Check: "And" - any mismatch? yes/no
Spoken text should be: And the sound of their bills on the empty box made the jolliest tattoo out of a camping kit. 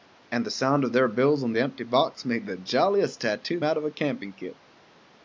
no